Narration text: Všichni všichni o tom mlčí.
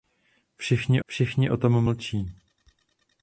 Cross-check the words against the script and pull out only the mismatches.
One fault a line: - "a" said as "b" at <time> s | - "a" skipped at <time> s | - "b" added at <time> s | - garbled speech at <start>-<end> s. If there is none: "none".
none